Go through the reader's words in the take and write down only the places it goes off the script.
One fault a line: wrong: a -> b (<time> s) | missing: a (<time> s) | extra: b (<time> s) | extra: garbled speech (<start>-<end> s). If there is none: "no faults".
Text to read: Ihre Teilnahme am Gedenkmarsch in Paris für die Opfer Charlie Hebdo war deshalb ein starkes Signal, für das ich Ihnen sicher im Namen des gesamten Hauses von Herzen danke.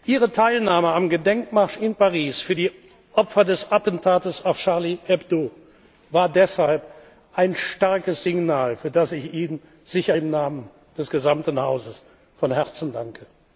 extra: des Attentats auf (3.4 s)